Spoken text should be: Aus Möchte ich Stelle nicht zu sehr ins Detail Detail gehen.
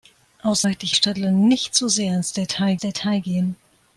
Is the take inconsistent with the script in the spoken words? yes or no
no